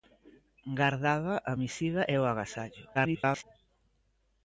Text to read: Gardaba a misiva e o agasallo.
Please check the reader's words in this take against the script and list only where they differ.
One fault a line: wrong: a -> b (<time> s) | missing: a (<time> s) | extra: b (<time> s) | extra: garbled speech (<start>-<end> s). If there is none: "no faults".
extra: garbled speech (2.9-3.4 s)